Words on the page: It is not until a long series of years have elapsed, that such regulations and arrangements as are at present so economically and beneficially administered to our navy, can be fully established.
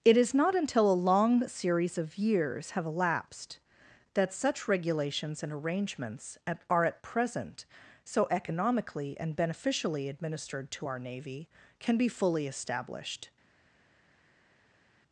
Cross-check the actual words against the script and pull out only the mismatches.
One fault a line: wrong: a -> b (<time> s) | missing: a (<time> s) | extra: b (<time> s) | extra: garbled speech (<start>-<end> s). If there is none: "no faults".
wrong: as -> at (6.5 s)